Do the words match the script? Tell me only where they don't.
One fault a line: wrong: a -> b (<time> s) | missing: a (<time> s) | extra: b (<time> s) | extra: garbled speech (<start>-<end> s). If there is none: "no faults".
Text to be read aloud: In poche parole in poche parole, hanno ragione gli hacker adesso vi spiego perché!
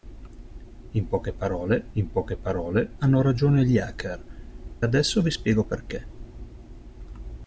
no faults